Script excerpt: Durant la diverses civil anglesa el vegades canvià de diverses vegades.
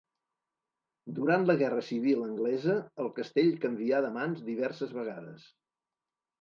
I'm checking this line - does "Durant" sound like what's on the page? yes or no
yes